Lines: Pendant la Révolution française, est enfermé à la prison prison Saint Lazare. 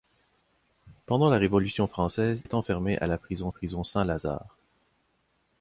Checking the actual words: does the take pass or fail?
pass